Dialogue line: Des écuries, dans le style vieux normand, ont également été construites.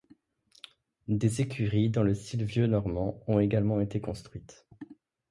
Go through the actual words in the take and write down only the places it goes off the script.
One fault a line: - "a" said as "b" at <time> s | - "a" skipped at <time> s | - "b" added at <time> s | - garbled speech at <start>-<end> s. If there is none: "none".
none